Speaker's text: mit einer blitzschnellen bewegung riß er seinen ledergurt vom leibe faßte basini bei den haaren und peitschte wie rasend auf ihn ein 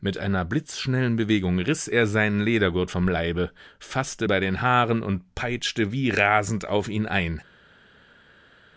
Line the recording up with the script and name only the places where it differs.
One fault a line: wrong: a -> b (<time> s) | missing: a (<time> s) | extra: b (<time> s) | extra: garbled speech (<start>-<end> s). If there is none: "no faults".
missing: basini (4.3 s)